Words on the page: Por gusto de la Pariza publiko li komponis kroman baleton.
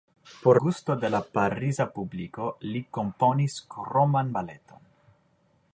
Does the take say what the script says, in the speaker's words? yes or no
yes